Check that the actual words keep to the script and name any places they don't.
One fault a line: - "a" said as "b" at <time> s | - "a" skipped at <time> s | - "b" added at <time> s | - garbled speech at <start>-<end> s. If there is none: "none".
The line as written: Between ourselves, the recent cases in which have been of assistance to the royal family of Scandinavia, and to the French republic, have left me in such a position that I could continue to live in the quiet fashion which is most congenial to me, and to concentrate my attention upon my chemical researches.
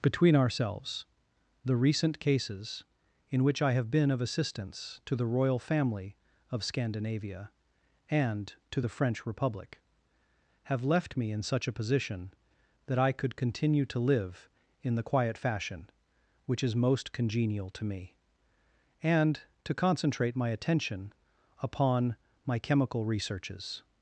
- "I" added at 3.6 s